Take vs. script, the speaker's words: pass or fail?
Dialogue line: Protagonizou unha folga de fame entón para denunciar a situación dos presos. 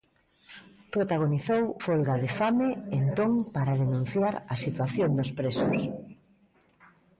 fail